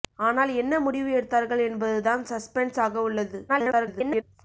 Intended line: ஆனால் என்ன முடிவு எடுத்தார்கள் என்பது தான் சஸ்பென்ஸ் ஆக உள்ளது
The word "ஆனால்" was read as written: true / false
true